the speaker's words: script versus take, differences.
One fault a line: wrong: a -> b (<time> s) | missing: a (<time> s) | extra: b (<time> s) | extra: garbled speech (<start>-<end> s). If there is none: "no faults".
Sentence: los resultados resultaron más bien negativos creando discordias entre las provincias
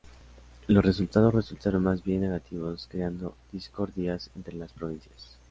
no faults